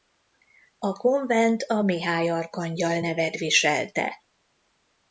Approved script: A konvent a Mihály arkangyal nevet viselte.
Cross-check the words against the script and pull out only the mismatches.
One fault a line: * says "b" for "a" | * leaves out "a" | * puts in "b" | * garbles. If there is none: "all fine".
all fine